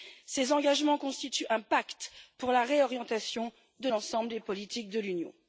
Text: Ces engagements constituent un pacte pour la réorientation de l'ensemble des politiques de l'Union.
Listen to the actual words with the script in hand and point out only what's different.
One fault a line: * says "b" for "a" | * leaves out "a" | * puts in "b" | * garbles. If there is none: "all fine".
all fine